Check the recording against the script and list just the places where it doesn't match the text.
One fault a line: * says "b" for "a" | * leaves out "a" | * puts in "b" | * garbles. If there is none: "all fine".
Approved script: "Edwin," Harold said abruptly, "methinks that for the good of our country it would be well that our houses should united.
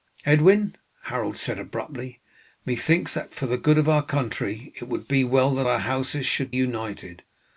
all fine